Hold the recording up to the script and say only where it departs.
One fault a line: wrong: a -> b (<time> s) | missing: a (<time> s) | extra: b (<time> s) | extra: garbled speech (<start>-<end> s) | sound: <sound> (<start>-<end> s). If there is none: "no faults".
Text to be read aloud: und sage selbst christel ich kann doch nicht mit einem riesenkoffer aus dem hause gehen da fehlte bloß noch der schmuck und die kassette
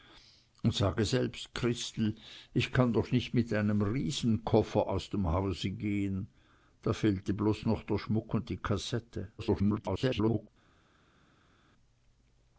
extra: garbled speech (9.4-10.5 s)